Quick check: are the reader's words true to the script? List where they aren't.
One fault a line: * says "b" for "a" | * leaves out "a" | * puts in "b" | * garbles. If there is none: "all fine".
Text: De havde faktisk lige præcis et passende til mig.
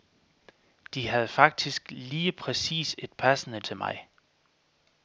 all fine